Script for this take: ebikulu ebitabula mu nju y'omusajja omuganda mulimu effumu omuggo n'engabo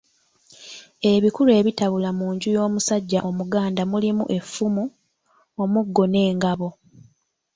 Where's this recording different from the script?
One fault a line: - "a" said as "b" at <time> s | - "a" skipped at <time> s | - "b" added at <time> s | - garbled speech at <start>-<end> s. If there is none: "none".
none